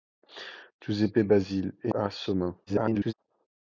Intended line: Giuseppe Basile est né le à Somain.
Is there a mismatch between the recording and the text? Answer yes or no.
yes